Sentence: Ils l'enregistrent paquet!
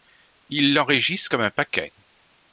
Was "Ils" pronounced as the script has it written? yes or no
yes